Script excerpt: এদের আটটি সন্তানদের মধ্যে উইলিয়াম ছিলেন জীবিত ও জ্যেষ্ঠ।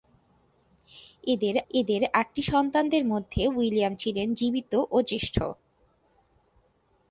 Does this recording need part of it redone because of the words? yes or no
yes